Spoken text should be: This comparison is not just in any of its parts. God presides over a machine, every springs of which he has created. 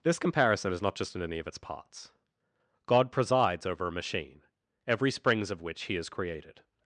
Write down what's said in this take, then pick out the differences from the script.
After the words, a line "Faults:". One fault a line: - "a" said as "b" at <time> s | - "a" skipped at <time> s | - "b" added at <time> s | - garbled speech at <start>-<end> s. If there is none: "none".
This comparison is not just in any of its parts. God presides over a machine, every springs of which he has created.
Faults:
none